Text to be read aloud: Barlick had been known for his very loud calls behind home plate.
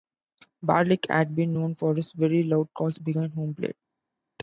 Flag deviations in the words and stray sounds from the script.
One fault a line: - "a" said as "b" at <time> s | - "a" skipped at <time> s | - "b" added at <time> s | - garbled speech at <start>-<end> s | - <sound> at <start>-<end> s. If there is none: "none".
none